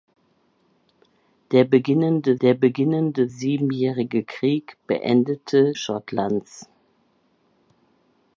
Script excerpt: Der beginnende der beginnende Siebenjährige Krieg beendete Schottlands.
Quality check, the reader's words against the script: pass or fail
pass